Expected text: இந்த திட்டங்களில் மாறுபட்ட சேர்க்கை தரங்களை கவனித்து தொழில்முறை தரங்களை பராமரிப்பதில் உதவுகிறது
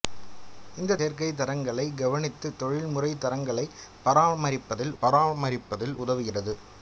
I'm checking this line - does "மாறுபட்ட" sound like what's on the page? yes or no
no